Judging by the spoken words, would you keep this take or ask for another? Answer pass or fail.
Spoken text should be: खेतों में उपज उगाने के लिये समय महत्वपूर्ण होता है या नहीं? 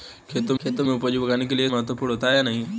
fail